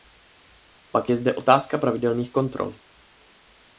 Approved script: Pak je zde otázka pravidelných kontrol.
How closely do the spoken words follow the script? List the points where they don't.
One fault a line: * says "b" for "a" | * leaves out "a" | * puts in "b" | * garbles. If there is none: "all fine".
all fine